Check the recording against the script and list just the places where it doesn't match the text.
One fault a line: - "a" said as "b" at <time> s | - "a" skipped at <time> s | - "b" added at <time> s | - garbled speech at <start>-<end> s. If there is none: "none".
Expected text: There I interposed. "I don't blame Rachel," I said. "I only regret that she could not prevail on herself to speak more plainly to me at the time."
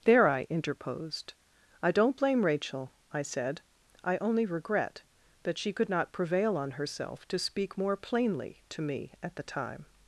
none